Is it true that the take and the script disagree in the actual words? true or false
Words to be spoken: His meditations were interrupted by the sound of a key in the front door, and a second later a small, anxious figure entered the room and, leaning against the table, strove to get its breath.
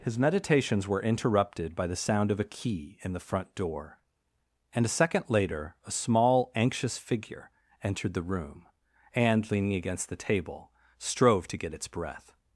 false